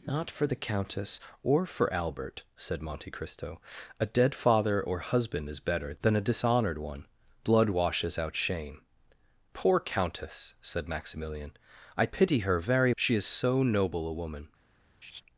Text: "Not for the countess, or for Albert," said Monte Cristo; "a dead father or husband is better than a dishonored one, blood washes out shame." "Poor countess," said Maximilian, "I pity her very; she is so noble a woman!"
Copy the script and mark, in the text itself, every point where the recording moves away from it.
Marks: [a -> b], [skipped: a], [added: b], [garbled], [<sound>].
"Not for the countess, or for Albert," said Monte Cristo; "a dead father or husband is better than a dishonored one, blood washes out shame." "Poor countess," said Maximilian, "I pity her very; she is so noble a woman!" [laugh]